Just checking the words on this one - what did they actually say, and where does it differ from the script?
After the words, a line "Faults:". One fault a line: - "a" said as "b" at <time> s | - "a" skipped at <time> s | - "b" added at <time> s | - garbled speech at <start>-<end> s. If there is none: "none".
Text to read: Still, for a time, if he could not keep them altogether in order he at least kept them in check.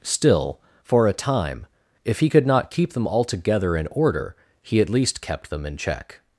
Still, for a time, if he could not keep them altogether in order he at least kept them in check.
Faults:
none